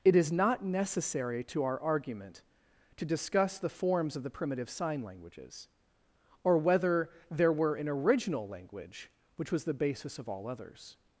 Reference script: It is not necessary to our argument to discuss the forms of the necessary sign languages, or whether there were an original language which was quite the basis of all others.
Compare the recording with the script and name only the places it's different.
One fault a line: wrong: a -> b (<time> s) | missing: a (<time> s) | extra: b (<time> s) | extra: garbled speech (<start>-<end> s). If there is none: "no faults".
wrong: necessary -> primitive (4.3 s)
missing: quite (9.6 s)